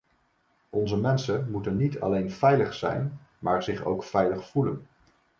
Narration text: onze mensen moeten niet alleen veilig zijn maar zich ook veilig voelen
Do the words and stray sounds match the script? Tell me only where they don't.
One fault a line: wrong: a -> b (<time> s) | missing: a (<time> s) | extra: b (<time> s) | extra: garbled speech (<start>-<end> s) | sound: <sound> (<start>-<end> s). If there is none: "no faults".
no faults